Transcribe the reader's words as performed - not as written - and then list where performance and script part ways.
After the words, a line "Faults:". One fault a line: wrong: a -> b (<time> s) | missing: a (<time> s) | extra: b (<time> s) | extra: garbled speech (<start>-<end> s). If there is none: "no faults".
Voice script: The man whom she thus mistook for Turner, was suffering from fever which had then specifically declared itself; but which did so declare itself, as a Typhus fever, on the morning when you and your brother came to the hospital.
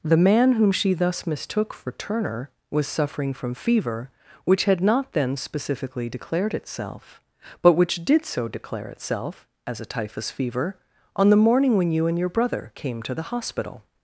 The man whom she thus mistook for Turner, was suffering from fever which had not then specifically declared itself; but which did so declare itself, as a Typhus fever, on the morning when you and your brother came to the hospital.
Faults:
extra: not (4.8 s)